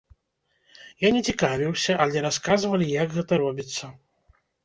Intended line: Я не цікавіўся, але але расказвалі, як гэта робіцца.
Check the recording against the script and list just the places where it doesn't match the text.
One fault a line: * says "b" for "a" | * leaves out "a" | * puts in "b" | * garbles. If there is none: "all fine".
* leaves out "але"